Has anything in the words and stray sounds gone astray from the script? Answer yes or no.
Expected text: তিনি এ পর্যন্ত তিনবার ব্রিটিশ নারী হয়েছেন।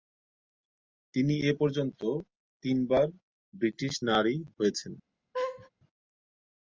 yes